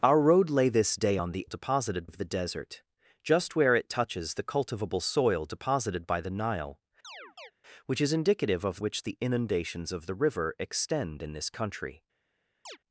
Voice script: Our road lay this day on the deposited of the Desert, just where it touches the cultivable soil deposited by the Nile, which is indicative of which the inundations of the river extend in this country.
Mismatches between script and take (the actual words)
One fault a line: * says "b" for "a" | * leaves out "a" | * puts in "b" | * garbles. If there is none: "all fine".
all fine